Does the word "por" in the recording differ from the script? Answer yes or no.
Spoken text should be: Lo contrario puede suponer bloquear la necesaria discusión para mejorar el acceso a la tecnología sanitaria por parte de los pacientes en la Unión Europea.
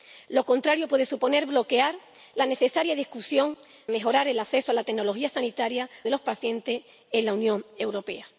yes